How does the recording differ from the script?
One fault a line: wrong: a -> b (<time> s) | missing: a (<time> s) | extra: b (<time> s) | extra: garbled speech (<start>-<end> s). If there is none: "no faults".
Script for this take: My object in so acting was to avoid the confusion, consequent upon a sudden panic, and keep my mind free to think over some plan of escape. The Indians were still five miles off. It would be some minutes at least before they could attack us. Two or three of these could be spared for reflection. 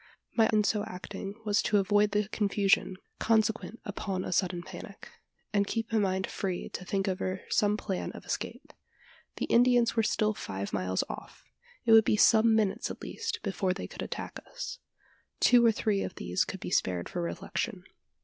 missing: object (0.5 s)